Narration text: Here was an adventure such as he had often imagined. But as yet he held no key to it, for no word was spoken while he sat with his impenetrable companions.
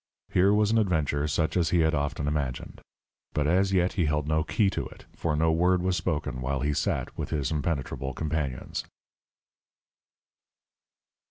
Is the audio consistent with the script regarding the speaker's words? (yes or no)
yes